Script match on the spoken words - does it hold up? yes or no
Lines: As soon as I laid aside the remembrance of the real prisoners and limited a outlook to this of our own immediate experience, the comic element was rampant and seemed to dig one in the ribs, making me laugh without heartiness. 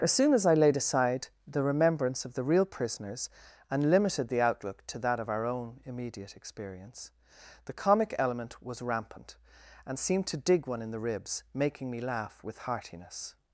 no